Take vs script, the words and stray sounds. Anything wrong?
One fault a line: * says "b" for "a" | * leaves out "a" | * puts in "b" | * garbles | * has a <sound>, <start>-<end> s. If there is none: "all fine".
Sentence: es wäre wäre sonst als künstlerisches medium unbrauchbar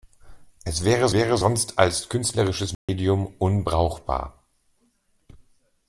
* has a dropout, 2.7-2.9 s